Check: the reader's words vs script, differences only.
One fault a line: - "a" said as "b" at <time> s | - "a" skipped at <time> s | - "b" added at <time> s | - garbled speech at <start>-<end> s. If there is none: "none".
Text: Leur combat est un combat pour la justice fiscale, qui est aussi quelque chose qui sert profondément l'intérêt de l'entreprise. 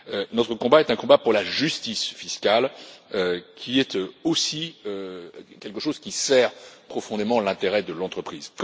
- "Leur" said as "Notre" at 0.3 s